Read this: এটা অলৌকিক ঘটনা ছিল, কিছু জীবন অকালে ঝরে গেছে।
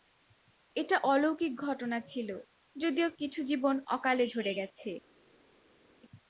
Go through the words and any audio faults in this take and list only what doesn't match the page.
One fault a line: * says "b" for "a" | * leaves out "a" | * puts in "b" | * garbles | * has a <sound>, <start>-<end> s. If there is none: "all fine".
* puts in "যদিও"